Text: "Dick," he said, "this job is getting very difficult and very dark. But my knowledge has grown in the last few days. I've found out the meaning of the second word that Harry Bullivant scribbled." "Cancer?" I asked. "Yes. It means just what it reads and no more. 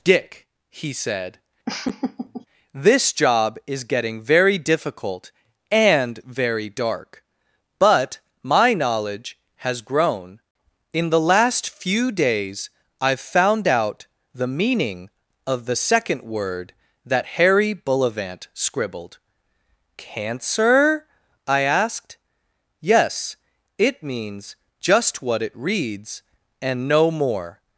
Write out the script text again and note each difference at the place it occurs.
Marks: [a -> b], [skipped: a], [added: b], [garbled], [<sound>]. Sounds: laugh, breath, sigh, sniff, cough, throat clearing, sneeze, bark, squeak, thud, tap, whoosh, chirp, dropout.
"Dick," he said, [laugh] "this job is getting very difficult and very dark. But my knowledge has grown in the last few days. I've found out the meaning of the second word that Harry Bullivant scribbled." "Cancer?" I asked. "Yes. It means just what it reads and no more.